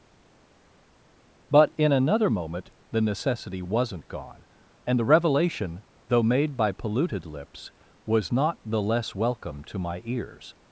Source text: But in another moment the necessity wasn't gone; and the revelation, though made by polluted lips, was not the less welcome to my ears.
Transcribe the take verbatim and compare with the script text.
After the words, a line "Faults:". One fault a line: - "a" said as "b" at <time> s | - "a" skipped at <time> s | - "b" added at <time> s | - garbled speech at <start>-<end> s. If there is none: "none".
But in another moment the necessity wasn't gone; and the revelation, though made by polluted lips, was not the less welcome to my ears.
Faults:
none